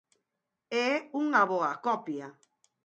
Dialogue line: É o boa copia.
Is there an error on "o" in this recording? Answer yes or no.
yes